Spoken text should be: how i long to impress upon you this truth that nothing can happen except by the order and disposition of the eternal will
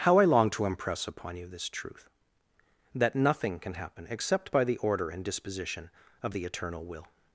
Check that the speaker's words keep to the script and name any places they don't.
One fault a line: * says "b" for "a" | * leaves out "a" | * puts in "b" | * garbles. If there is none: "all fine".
all fine